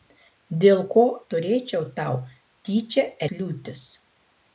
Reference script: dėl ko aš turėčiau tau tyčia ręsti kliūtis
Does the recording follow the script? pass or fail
fail